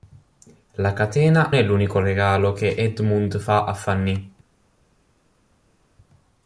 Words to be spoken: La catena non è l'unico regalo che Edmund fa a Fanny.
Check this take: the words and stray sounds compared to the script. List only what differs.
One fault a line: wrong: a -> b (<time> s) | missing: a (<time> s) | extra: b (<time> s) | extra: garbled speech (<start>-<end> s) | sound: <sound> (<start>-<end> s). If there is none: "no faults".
missing: non (1.5 s)